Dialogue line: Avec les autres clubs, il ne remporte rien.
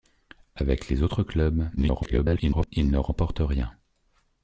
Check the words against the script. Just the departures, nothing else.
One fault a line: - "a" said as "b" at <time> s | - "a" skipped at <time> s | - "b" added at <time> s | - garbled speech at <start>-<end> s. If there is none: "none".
- garbled speech at 1.8-2.7 s